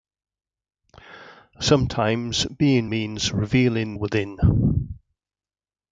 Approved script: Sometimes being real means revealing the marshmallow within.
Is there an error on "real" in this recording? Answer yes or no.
yes